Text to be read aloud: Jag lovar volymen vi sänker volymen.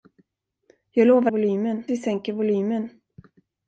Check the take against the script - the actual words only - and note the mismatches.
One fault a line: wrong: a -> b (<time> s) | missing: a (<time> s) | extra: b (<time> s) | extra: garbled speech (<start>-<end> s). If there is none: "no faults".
no faults